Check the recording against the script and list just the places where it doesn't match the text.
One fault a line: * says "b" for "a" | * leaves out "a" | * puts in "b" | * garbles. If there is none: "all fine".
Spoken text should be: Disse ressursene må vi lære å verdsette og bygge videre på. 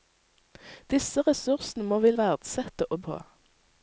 * leaves out "lære"
* leaves out "bygge videre"